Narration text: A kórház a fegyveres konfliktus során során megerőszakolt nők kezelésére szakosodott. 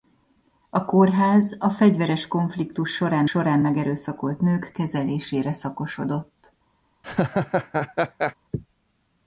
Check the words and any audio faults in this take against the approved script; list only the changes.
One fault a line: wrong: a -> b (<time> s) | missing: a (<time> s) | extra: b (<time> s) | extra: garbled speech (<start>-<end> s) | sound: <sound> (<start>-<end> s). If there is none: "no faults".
sound: laugh (7.0-8.3 s)